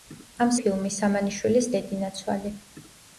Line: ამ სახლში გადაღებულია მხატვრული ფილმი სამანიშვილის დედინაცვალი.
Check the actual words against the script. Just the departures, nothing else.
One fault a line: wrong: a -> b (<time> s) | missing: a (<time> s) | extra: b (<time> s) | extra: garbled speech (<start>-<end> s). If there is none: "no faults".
missing: სახლში გადაღებულია მხატვრული (0.5 s)